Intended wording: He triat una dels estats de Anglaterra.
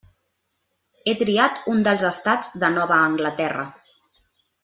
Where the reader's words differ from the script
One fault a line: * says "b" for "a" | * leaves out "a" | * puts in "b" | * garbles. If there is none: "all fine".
* says "un" for "una"
* puts in "Nova"